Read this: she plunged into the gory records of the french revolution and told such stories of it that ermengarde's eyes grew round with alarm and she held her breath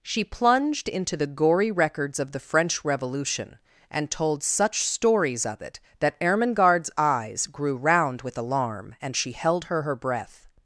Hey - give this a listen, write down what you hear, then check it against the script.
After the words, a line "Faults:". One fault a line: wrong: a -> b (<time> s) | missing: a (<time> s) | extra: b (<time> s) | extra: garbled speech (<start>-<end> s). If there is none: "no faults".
she plunged into the gory records of the french revolution and told such stories of it that ermengarde's eyes grew round with alarm and she held her her breath
Faults:
extra: her (9.8 s)